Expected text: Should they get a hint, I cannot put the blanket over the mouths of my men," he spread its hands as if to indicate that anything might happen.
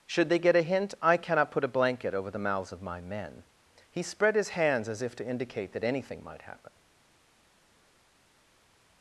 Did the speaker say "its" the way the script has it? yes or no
no